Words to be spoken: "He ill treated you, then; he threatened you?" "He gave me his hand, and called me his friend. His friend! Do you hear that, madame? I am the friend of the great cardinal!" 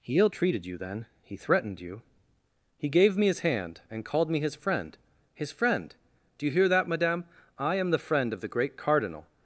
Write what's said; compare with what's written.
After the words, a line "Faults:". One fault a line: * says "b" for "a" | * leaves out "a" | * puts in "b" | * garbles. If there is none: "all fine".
"He ill treated you, then; he threatened you?" "He gave me his hand, and called me his friend. His friend! Do you hear that, madame? I am the friend of the great cardinal!"
Faults:
all fine